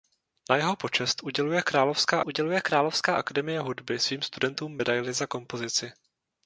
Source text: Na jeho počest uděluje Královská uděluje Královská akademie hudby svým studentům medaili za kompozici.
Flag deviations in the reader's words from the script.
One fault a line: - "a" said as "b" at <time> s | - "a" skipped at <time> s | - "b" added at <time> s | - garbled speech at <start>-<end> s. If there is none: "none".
none